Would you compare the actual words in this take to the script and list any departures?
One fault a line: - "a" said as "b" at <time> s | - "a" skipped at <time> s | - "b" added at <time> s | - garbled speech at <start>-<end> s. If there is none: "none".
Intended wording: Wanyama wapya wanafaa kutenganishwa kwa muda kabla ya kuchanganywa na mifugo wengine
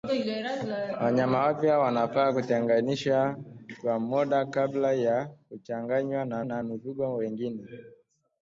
- "na" added at 6.4 s